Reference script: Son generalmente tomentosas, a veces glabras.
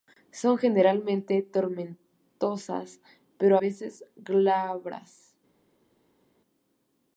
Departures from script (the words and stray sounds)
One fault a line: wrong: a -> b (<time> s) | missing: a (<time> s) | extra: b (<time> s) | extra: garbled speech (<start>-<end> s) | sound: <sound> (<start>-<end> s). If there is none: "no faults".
extra: pero (3.4 s)